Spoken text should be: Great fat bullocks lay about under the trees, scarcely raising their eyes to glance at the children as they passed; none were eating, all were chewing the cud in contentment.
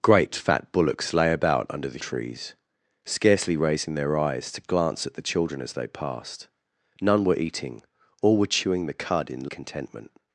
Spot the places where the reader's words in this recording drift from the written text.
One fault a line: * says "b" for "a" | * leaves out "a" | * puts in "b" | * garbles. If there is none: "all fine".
all fine